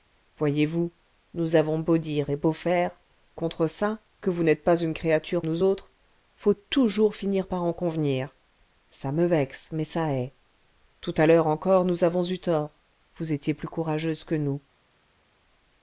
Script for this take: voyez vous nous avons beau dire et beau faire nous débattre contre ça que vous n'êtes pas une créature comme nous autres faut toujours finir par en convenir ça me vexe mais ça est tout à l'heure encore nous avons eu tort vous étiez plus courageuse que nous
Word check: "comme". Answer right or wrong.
wrong